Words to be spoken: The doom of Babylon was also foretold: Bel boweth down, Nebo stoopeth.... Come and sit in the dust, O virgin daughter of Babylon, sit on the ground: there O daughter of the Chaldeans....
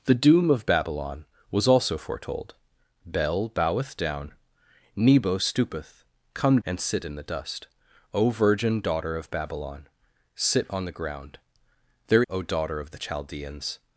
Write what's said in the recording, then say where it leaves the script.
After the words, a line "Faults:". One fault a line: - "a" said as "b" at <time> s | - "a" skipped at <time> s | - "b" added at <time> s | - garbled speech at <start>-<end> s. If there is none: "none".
The doom of Babylon was also foretold: Bel boweth down, Nebo stoopeth.... Come and sit in the dust, O virgin daughter of Babylon, sit on the ground: there O daughter of the Chaldeans....
Faults:
none